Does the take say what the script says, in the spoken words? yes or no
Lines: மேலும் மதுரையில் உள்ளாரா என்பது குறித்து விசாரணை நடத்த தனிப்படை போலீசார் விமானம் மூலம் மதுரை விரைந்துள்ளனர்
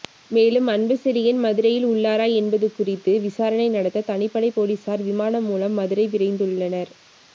no